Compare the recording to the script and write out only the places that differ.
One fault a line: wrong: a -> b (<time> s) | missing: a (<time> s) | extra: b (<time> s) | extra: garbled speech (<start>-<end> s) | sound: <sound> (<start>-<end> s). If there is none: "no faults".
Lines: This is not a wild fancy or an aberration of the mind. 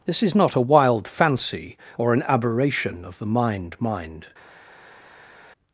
extra: mind (3.8 s)